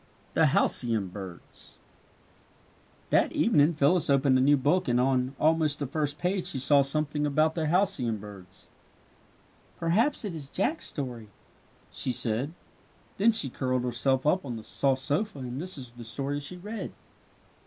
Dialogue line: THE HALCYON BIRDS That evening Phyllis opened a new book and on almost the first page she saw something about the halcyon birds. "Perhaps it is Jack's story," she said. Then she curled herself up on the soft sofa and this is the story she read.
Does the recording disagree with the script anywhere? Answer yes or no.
no